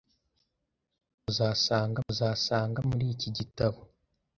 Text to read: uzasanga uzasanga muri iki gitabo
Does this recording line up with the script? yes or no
yes